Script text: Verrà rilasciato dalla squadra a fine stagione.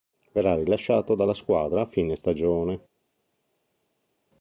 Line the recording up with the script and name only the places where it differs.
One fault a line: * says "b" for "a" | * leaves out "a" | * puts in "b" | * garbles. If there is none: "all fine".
all fine